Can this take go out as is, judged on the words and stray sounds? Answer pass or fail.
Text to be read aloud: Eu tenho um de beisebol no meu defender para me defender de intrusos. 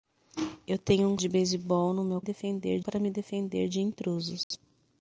fail